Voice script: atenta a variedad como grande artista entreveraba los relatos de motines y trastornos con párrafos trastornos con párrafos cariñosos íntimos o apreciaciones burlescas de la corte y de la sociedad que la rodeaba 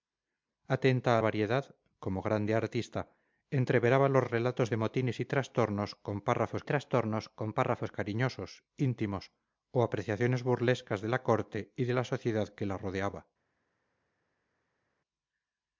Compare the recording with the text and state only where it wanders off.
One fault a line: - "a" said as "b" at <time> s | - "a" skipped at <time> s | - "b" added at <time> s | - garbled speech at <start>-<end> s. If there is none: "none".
none